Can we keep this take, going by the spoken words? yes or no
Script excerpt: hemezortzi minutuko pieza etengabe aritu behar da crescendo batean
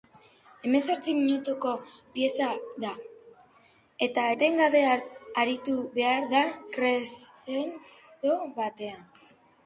no